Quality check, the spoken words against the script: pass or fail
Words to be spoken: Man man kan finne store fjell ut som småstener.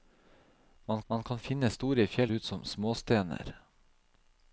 pass